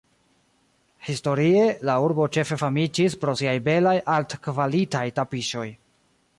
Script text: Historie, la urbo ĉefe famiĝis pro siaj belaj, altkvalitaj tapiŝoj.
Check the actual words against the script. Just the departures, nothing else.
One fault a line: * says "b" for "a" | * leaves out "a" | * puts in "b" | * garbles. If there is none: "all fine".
all fine